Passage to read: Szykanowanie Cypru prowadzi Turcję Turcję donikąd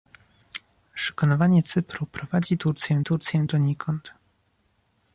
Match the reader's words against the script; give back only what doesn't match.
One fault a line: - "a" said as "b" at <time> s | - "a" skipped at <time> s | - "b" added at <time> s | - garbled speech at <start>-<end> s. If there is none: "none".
none